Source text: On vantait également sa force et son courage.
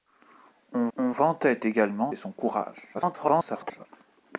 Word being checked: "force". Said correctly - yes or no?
no